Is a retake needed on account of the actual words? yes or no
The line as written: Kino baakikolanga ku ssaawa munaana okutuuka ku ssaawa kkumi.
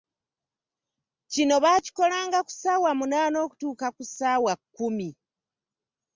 no